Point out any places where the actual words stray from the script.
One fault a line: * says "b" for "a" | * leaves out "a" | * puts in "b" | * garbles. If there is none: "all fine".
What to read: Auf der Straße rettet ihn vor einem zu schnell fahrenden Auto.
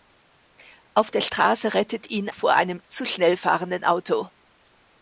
all fine